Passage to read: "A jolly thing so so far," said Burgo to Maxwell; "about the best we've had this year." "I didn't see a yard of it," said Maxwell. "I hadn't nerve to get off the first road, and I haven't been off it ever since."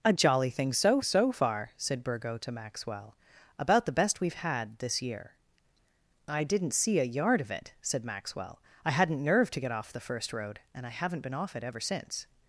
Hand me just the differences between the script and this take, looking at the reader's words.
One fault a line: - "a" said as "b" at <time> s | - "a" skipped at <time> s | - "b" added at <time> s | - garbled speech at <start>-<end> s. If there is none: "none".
none